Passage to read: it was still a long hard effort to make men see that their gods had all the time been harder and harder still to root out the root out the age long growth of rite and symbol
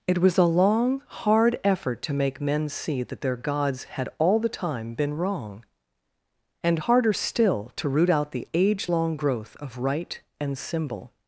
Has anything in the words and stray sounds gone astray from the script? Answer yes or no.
yes